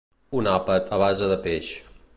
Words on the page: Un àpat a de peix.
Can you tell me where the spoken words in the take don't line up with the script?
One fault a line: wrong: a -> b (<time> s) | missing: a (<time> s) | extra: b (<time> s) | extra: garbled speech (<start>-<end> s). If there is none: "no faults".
extra: base (1.0 s)